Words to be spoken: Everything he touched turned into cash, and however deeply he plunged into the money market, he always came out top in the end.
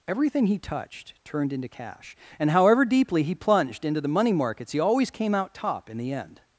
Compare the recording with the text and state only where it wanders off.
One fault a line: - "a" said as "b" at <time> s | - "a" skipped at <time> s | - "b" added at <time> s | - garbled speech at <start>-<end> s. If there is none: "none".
- "market" said as "markets" at 4.3 s